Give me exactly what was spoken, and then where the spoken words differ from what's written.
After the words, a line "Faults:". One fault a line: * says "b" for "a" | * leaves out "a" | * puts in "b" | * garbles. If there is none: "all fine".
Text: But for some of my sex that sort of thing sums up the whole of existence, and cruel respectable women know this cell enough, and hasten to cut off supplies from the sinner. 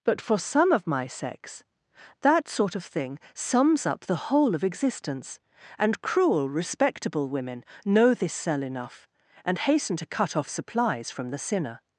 But for some of my sex that sort of thing sums up the whole of existence, and cruel respectable women know this cell enough, and hasten to cut off supplies from the sinner.
Faults:
all fine